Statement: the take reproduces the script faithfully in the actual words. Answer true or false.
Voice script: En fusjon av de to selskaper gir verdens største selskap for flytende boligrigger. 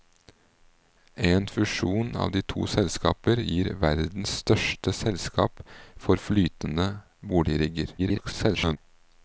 false